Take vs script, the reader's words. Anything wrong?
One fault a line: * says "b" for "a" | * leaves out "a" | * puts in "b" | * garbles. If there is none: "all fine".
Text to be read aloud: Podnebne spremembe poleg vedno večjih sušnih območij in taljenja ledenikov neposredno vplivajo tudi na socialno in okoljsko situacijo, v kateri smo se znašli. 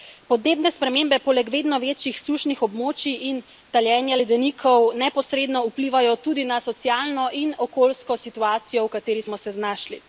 all fine